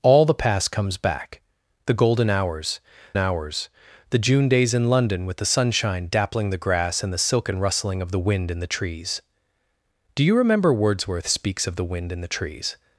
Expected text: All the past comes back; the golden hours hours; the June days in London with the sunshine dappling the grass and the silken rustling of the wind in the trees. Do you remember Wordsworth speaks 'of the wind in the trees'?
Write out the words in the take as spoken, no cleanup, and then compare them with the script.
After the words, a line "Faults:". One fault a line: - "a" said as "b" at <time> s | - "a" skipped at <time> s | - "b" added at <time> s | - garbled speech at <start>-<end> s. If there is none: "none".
All the past comes back; the golden hours hours; the June days in London with the sunshine dappling the grass and the silken rustling of the wind in the trees. Do you remember Wordsworth speaks 'of the wind in the trees'?
Faults:
none